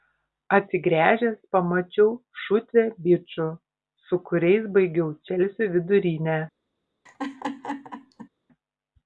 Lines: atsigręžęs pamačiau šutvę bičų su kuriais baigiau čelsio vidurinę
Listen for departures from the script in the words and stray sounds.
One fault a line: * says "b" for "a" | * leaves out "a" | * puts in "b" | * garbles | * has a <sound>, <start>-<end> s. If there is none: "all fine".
* has a laugh, 7.1-8.3 s